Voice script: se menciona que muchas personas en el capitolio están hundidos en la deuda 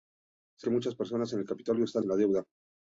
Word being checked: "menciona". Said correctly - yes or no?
no